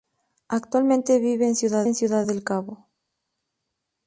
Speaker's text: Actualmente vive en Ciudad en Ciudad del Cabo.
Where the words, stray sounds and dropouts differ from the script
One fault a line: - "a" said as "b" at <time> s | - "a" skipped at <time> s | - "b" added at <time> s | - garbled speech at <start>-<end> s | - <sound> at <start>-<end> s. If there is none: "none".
none